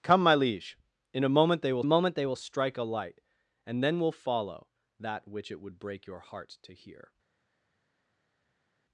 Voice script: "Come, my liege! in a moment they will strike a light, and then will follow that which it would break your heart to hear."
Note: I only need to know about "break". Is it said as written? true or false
true